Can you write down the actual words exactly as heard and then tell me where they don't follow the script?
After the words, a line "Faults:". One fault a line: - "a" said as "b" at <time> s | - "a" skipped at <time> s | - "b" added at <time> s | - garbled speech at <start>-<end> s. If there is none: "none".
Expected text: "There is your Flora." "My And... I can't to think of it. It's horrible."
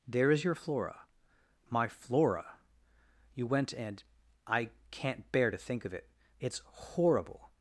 "There is your Flora." "My Flora! You went and... I can't bear to think of it. It's horrible."
Faults:
- "Flora You went" added at 1.9 s
- "bear" added at 5.3 s